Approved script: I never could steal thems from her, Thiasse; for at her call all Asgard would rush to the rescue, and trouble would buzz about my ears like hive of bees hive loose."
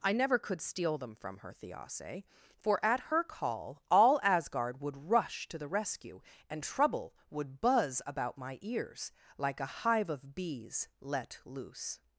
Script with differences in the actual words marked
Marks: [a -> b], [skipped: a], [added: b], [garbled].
I never could steal [thems -> them] from her, Thiasse; for at her call all Asgard would rush to the rescue, and trouble would buzz about my ears like [added: a] hive of bees [hive -> let] loose."